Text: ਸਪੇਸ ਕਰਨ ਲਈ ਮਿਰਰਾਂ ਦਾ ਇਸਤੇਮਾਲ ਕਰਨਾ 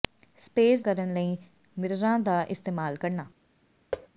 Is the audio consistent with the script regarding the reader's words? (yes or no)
yes